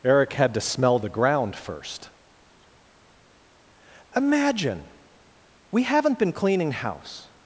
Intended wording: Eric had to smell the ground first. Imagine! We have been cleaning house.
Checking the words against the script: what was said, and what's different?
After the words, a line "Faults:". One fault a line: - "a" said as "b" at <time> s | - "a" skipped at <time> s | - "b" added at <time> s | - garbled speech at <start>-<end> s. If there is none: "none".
Eric had to smell the ground first. Imagine! We haven't been cleaning house.
Faults:
- "have" said as "haven't" at 5.8 s